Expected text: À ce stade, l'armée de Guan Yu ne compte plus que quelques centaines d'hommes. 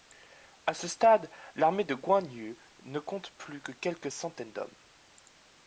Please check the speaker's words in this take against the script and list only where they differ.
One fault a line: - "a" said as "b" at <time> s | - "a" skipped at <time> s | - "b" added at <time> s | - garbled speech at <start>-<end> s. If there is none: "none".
none